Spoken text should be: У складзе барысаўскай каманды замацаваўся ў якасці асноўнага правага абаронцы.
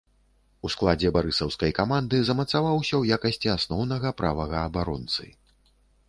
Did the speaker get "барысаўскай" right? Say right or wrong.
right